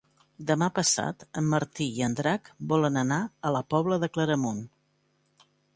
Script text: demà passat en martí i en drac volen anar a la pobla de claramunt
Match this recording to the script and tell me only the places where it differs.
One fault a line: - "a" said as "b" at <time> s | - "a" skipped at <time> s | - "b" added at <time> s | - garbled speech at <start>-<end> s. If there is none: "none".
none